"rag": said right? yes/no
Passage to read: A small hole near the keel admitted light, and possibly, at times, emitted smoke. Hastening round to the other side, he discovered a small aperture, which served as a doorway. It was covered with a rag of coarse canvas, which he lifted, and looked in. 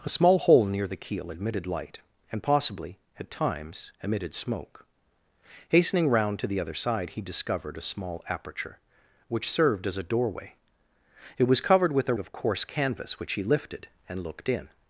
no